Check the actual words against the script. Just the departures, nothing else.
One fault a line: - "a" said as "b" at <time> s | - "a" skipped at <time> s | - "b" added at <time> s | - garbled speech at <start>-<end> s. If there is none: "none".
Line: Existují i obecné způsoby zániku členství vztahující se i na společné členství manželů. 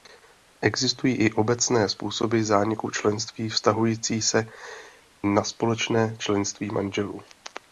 - "i" skipped at 4.5 s